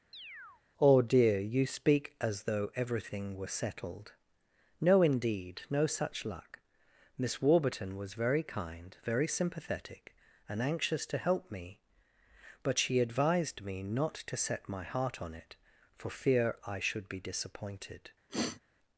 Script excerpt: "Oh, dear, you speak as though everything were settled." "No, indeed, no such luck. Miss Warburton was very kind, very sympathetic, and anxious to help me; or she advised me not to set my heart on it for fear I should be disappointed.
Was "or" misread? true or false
true